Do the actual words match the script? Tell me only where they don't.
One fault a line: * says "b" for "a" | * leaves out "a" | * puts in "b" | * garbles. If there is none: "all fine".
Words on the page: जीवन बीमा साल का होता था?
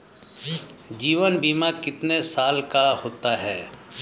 * puts in "कितने"
* says "है" for "था"